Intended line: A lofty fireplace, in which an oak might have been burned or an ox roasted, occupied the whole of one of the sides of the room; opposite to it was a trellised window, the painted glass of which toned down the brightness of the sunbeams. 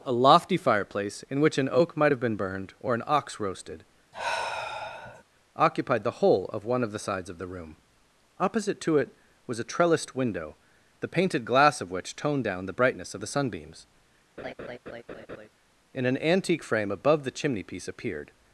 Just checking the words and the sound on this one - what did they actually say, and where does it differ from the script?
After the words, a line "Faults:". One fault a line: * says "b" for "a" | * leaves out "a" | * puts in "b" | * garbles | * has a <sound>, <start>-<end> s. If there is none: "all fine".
A lofty fireplace, in which an oak might have been burned or an ox roasted, occupied the whole of one of the sides of the room; opposite to it was a trellised window, the painted glass of which toned down the brightness of the sunbeams. In an antique frame above the chimney piece appeared
Faults:
* has a sigh, 4.1-5.2 s
* has a laugh, 14.4-15.5 s
* puts in "In an antique frame above the chimney piece appeared"